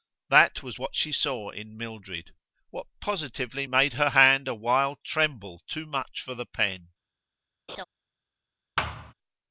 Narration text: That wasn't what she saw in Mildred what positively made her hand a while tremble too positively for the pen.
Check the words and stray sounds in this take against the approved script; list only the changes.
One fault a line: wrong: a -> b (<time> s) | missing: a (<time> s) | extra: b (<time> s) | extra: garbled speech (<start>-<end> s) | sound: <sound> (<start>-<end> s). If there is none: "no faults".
wrong: wasn't -> was (0.6 s)
wrong: positively -> much (5.8 s)
sound: laugh (7.7-7.8 s)
sound: thud (8.8-9.1 s)